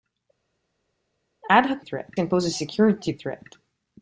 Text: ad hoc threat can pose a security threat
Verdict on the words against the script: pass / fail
pass